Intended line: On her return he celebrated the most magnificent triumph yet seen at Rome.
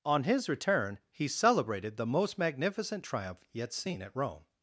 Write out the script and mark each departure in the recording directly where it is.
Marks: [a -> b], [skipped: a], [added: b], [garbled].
On [her -> his] return he celebrated the most magnificent triumph yet seen at Rome.